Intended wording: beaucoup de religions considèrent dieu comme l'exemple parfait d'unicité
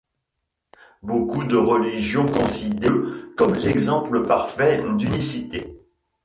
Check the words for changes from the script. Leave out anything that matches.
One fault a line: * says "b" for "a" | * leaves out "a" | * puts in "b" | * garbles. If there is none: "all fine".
all fine